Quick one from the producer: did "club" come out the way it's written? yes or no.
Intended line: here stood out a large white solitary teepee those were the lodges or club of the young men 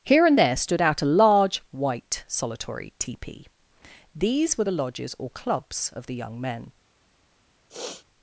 no